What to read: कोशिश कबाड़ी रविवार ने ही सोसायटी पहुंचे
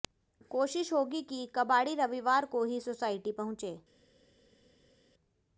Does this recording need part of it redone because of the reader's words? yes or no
yes